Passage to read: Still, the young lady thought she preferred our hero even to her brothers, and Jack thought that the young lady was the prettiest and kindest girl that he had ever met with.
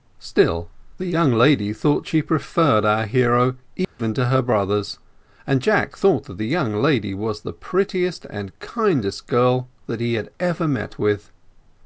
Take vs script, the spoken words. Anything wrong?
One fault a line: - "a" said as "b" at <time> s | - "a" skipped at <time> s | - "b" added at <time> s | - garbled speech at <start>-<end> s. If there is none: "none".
none